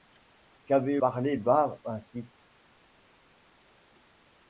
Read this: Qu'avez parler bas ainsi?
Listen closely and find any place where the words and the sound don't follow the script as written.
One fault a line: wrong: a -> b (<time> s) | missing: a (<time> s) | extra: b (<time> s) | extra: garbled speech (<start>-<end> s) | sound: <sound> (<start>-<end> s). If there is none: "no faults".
no faults